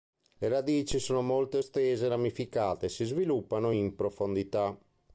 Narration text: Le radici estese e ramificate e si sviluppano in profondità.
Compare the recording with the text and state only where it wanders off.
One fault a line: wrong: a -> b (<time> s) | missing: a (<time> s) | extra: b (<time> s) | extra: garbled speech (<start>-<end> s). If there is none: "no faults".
extra: sono molto (1.0 s)